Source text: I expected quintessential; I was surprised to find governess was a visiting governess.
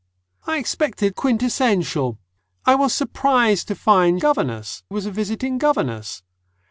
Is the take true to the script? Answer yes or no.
yes